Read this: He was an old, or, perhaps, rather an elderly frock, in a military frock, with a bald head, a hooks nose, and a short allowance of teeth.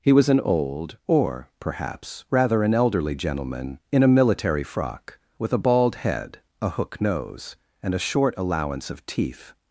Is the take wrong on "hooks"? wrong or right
wrong